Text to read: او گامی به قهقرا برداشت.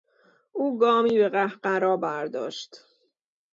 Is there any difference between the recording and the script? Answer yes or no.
no